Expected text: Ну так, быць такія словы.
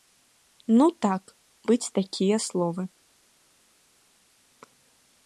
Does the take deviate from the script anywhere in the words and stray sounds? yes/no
no